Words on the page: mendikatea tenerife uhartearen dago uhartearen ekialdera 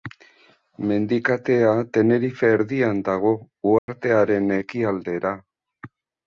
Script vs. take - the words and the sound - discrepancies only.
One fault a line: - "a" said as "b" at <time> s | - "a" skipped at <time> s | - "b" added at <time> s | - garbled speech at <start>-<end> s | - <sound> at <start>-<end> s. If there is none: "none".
- "uhartearen" said as "erdian" at 2.6 s
- dropout at 3.8-3.9 s